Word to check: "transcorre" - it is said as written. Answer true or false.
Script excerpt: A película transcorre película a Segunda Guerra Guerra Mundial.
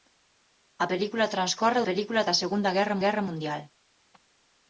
true